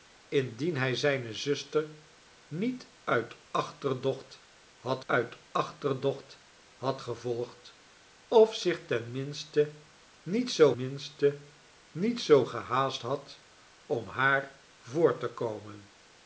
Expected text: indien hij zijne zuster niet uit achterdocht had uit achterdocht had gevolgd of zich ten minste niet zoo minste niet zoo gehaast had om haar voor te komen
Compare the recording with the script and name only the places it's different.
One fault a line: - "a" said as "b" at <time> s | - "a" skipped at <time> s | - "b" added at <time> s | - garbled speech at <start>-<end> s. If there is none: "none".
none